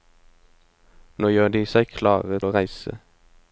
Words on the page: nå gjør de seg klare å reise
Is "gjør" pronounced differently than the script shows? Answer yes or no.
no